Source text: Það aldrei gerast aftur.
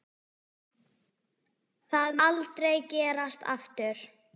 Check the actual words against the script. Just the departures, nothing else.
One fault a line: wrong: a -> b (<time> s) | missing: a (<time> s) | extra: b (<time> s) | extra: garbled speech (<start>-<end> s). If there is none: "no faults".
no faults